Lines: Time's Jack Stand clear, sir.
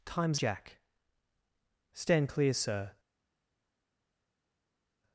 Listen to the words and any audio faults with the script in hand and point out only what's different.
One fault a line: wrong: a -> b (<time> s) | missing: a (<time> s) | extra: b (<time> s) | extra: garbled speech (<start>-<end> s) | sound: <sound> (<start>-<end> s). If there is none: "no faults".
no faults